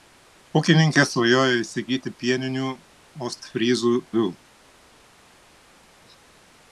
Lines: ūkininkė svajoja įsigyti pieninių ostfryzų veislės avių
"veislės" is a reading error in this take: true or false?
true